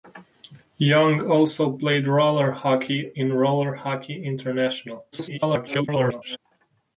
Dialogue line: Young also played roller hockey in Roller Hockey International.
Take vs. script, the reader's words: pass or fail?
fail